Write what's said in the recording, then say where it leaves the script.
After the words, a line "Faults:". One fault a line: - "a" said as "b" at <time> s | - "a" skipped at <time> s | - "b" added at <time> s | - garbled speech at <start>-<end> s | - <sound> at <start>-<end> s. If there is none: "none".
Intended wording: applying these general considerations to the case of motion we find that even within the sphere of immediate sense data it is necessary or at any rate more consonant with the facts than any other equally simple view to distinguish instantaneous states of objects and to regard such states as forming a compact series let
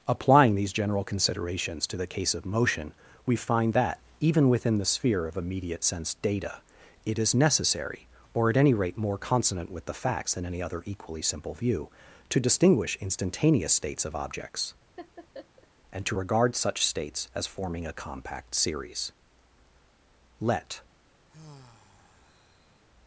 applying these general considerations to the case of motion we find that even within the sphere of immediate sense data it is necessary or at any rate more consonant with the facts than any other equally simple view to distinguish instantaneous states of objects and to regard such states as forming a compact series let
Faults:
- laugh at 15.0-15.7 s
- sigh at 21.3-22.8 s